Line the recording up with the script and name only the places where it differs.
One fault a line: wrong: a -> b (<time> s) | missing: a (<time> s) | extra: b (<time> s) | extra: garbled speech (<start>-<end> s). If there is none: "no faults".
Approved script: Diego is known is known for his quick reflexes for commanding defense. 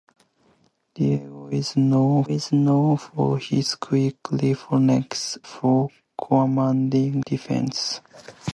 no faults